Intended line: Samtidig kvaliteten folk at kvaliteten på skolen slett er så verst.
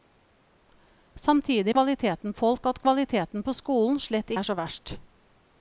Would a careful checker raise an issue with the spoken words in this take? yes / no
no